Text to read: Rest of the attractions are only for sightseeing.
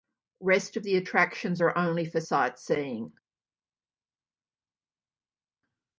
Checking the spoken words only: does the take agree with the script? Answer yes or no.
yes